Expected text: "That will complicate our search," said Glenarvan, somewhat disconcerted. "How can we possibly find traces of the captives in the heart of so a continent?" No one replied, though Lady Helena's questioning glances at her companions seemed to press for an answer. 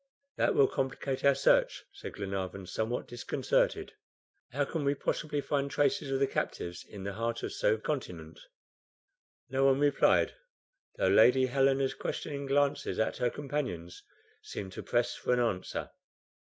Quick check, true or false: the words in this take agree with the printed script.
true